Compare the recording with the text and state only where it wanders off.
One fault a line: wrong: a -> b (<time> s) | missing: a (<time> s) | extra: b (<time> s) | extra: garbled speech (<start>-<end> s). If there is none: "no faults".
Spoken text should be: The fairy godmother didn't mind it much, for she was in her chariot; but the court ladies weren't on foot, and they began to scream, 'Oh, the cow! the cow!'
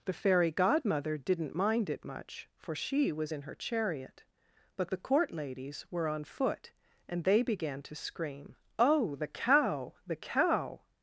wrong: weren't -> were (5.9 s)